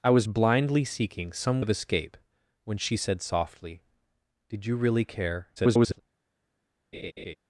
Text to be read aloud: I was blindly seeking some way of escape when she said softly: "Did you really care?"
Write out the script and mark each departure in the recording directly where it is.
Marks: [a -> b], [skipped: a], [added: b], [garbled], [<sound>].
I was blindly seeking some [skipped: way] of escape when she said softly: "Did you really care?" [garbled] [laugh]